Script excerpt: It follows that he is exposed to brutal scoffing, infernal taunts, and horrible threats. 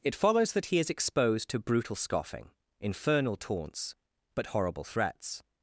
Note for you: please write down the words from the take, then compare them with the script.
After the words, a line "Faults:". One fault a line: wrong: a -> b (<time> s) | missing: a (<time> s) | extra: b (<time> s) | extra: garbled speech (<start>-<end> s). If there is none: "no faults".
It follows that he is exposed to brutal scoffing, infernal taunts, but horrible threats.
Faults:
wrong: and -> but (4.3 s)